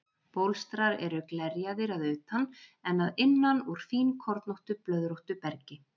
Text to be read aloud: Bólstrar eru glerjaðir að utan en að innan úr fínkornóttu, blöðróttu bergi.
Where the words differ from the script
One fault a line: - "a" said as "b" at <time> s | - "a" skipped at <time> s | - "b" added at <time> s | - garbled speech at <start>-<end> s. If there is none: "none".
none